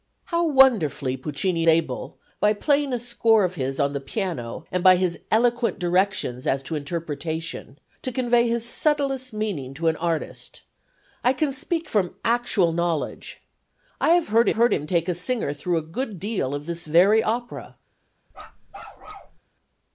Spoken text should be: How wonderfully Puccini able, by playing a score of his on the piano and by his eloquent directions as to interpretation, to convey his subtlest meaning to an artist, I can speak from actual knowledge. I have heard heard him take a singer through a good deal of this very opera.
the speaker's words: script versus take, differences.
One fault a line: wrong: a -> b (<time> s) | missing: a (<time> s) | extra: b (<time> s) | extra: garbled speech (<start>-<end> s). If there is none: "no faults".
no faults